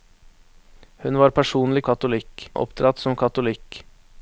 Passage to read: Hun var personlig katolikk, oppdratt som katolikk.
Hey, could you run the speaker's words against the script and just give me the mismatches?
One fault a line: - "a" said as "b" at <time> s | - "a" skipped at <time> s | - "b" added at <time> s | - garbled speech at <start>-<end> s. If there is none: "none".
none